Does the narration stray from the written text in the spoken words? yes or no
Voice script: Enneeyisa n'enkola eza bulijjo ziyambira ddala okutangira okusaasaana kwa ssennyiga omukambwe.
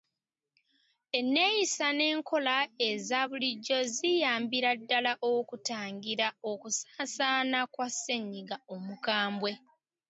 no